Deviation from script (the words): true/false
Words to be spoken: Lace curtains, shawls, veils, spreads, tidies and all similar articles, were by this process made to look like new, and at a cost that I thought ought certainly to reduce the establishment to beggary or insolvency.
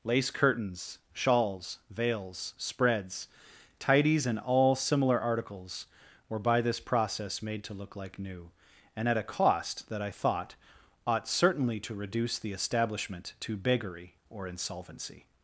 false